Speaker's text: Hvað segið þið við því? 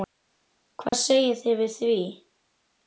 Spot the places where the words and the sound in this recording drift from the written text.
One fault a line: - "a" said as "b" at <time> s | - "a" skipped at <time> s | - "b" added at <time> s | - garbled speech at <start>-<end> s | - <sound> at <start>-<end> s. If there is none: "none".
- dropout at 0.9-0.9 s